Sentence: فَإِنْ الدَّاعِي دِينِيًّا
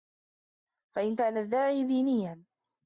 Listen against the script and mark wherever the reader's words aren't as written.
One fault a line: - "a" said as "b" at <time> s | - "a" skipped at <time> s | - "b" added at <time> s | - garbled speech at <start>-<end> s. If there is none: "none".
- "كَانَ" added at 1.1 s